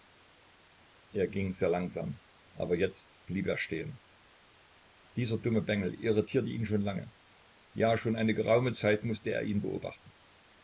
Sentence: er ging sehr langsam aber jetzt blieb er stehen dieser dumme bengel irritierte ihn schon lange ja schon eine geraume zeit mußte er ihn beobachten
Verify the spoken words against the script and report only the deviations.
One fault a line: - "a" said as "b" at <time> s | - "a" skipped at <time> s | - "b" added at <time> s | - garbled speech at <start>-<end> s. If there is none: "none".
none